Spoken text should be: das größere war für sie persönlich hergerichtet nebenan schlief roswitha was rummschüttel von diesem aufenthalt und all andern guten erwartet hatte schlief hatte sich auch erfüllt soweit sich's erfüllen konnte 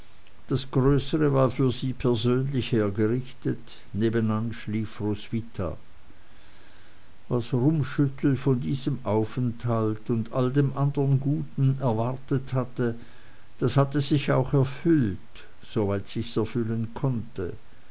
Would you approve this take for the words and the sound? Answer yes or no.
no